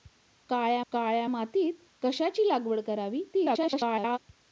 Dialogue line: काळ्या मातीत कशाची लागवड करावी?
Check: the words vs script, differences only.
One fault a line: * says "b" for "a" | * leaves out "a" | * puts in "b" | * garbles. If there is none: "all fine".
* puts in "काळ्या"
* garbles